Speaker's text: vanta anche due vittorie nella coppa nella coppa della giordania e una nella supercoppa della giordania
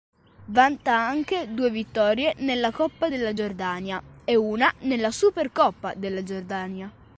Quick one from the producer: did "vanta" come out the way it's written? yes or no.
yes